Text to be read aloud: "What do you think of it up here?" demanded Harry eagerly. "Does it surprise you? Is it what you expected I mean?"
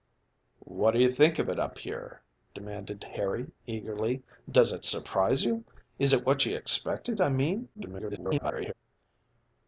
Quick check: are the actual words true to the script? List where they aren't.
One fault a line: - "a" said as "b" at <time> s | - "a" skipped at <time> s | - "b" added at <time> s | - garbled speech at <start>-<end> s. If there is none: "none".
- garbled speech at 7.7-8.7 s